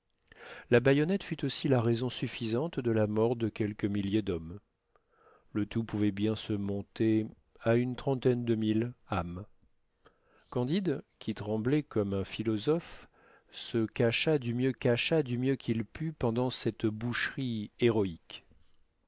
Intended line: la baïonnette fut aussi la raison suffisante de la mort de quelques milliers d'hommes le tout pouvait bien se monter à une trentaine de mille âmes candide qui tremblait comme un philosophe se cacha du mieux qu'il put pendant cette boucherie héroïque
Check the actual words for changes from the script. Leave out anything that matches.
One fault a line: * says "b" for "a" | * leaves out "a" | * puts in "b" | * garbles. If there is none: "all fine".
* puts in "cacha du mieux"